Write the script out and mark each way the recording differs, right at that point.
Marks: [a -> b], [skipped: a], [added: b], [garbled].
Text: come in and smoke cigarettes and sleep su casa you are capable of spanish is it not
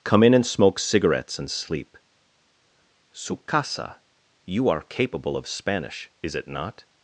come in and smoke cigarettes and sleep su casa you are capable of spanish is it not